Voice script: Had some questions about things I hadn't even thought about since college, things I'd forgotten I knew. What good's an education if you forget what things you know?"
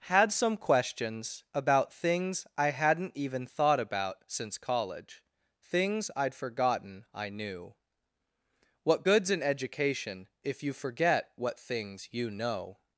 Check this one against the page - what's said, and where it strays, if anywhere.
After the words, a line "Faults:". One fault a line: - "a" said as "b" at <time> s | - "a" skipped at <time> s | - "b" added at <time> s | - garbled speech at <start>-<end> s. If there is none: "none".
Had some questions about things I hadn't even thought about since college, things I'd forgotten I knew. What good's an education if you forget what things you know?"
Faults:
none